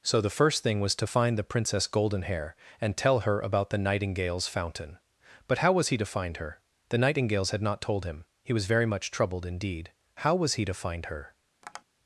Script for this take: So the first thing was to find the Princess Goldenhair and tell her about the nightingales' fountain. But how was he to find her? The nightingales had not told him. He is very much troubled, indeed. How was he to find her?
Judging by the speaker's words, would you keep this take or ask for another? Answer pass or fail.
fail